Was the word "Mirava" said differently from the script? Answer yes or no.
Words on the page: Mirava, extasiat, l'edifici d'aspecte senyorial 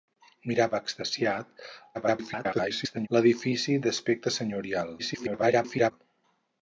no